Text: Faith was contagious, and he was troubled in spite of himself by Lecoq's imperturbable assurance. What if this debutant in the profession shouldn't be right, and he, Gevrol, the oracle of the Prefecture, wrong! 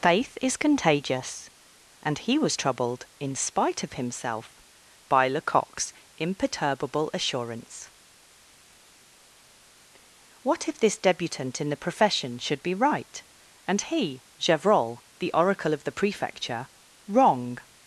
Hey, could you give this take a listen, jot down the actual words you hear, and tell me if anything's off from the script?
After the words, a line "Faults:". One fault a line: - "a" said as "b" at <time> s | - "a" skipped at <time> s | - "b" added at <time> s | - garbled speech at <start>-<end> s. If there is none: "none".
Faith is contagious, and he was troubled in spite of himself by Lecoq's imperturbable assurance. What if this debutant in the profession should be right, and he, Gevrol, the oracle of the Prefecture, wrong!
Faults:
- "was" said as "is" at 0.4 s
- "shouldn't" said as "should" at 12.4 s